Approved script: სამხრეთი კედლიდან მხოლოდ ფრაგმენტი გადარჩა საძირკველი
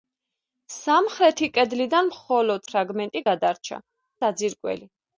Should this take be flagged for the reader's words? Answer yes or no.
no